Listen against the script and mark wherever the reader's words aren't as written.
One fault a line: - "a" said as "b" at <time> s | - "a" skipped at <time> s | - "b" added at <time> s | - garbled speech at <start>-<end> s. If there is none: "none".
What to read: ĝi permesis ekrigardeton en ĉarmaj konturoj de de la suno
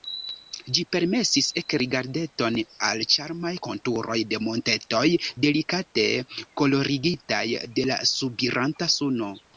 - "en" said as "al" at 2.9 s
- "montetoj delikate kolorigitaj" added at 4.5 s
- "subiranta" added at 8.1 s